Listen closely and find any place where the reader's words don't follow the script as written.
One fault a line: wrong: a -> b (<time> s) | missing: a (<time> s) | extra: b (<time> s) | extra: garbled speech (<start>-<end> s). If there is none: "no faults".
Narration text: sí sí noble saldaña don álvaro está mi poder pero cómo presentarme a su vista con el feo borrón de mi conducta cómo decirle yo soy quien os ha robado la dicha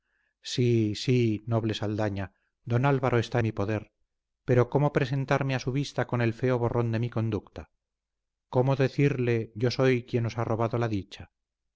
no faults